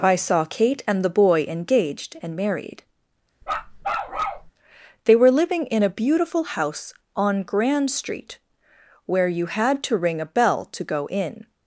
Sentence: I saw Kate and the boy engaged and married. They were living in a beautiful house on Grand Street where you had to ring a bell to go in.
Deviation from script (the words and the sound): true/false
true